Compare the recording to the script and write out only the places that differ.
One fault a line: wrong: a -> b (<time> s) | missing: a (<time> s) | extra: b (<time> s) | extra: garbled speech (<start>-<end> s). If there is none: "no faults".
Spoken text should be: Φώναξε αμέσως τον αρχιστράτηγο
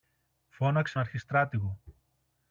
missing: αμέσως τον (1.0 s)